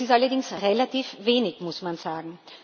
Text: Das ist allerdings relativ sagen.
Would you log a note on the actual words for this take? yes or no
yes